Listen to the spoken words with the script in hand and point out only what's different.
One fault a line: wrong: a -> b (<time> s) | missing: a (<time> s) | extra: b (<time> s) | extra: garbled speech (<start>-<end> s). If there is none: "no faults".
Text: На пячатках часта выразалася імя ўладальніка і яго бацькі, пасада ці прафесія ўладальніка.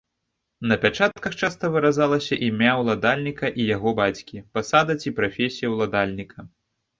no faults